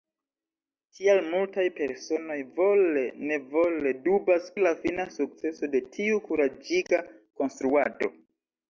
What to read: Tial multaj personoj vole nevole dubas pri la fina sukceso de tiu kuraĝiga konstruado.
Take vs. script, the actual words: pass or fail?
fail